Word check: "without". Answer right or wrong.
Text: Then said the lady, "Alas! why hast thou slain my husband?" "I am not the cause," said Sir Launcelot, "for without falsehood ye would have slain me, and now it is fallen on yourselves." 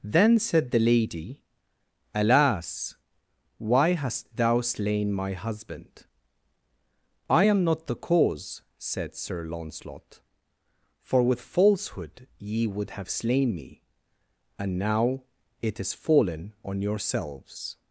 wrong